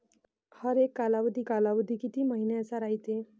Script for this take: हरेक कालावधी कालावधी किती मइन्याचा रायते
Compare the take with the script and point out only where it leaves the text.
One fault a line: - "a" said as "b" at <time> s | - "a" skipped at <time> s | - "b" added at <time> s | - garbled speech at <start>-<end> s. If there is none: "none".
none